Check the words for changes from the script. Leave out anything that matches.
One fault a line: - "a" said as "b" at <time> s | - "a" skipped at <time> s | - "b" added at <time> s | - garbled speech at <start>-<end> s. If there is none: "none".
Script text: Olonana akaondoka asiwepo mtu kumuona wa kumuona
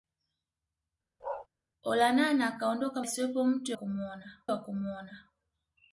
none